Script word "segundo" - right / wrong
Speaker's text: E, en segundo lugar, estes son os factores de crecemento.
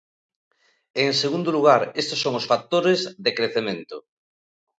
right